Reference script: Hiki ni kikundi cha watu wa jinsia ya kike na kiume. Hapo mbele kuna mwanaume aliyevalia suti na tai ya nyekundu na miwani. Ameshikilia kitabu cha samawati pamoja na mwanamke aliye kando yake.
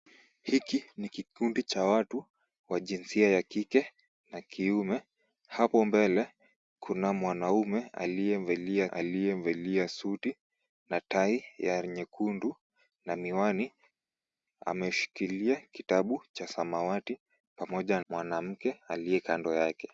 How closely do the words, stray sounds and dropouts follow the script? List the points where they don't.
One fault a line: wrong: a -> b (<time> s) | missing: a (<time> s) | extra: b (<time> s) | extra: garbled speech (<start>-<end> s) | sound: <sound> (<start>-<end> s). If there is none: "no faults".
extra: aliyevalia (8.9 s)
missing: na (18.0 s)